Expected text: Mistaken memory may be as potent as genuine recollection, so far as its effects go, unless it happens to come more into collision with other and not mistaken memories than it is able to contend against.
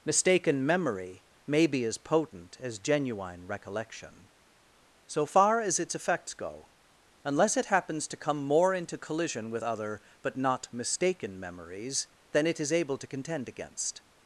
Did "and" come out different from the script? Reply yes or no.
yes